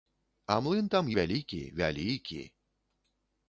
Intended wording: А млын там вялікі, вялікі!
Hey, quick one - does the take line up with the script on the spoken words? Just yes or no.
yes